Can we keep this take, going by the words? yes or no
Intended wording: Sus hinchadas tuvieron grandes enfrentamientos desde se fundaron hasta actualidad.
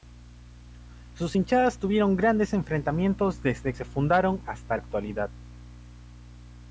yes